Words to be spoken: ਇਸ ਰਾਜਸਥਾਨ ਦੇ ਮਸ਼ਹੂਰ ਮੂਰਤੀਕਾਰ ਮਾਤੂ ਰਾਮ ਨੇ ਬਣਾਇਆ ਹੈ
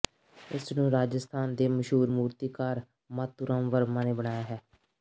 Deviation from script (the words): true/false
true